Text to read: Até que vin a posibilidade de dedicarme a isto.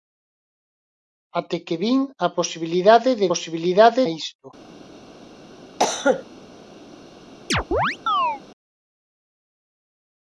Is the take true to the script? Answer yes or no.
no